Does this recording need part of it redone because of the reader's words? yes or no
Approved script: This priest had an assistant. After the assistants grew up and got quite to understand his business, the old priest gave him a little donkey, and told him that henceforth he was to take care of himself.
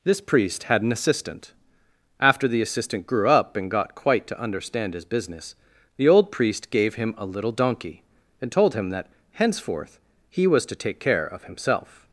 yes